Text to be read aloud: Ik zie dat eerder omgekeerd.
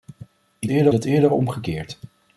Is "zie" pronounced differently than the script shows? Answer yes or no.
yes